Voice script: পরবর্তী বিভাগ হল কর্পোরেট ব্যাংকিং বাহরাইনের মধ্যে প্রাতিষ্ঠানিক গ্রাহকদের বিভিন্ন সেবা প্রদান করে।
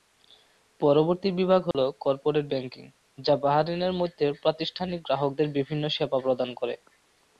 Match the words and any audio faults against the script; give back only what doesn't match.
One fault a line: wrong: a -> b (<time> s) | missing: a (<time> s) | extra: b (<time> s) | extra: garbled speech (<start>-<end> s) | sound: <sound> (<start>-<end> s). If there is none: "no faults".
sound: dropout (1.7-1.7 s)
extra: যা (3.2 s)